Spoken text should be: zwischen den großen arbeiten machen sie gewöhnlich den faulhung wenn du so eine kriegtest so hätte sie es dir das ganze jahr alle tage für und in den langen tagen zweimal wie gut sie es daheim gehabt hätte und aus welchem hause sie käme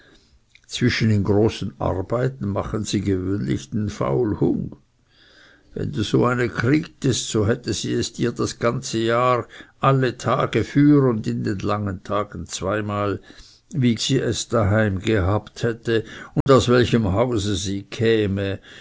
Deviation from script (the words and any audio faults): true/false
true